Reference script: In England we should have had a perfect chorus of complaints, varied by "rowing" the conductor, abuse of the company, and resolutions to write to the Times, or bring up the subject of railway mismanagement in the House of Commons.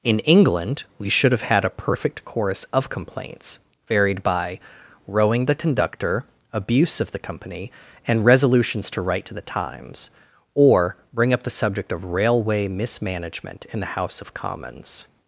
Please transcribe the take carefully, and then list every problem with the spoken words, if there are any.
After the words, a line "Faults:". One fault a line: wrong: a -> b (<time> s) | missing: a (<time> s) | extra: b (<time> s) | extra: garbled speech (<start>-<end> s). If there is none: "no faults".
In England we should have had a perfect chorus of complaints, varied by "rowing" the conductor, abuse of the company, and resolutions to write to the Times, or bring up the subject of railway mismanagement in the House of Commons.
Faults:
no faults